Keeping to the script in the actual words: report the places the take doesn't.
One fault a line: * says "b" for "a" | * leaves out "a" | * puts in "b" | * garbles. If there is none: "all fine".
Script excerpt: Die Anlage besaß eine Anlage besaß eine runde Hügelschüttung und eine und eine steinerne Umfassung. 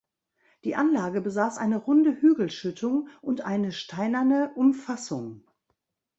* leaves out "Anlage besaß eine"
* leaves out "und eine"